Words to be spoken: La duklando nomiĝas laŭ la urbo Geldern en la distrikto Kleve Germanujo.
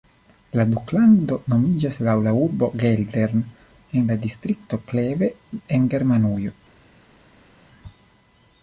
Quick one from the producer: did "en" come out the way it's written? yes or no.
yes